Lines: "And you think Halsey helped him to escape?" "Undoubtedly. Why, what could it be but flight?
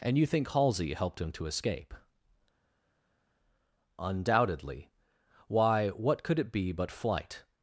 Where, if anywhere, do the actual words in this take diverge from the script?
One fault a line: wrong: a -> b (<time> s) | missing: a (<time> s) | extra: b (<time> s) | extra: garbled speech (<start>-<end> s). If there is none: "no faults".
no faults